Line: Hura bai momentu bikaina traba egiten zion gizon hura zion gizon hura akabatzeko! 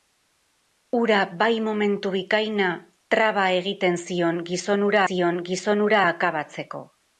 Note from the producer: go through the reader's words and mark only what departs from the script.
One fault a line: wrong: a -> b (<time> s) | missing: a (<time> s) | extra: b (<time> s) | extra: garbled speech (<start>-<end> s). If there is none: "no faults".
no faults